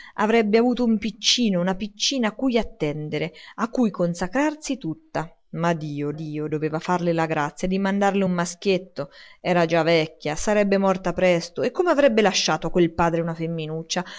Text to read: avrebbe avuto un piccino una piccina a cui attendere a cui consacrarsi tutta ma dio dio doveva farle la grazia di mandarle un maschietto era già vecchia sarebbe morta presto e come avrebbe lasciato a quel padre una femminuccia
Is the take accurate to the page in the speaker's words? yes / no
yes